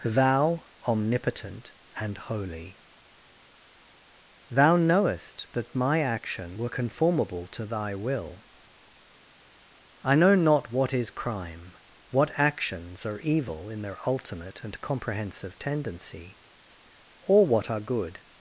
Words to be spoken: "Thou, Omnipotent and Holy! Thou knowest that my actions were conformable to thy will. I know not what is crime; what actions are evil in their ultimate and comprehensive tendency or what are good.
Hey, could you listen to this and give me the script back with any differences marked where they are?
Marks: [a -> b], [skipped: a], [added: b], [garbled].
"Thou, Omnipotent and Holy! Thou knowest that my [actions -> action] were conformable to thy will. I know not what is crime; what actions are evil in their ultimate and comprehensive tendency or what are good.